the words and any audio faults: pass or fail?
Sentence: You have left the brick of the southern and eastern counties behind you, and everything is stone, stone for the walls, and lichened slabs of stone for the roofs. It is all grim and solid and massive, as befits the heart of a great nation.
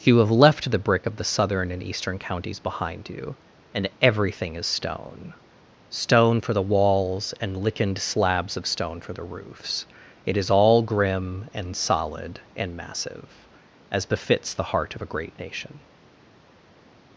pass